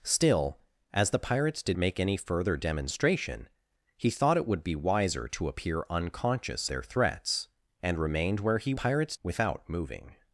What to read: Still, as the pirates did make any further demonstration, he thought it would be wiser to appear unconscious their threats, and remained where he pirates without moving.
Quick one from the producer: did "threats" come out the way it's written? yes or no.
yes